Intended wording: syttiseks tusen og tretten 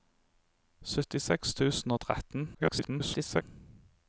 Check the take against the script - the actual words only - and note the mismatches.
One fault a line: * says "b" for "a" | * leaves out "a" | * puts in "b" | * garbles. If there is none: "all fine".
* garbles